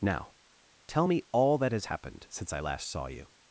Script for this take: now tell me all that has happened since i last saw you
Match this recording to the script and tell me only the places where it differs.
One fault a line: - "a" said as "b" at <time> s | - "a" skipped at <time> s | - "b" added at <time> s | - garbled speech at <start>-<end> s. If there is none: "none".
none